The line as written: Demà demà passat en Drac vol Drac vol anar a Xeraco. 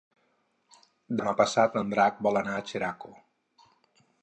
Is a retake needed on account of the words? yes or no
yes